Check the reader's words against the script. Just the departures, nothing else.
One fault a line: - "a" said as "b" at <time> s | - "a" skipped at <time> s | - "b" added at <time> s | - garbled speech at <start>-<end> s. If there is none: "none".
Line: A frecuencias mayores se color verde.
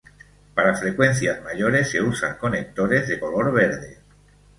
- "A" said as "Para" at 0.6 s
- "usan conectores de" added at 2.0 s